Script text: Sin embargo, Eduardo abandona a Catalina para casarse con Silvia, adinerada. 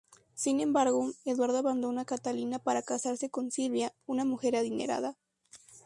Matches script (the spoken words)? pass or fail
fail